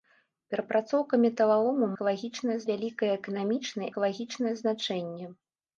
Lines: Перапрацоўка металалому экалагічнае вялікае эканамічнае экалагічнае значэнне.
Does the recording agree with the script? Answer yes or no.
yes